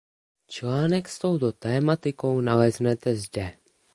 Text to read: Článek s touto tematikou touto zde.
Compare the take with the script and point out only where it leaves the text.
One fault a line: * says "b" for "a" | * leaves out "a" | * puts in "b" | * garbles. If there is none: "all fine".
* says "naleznete" for "touto"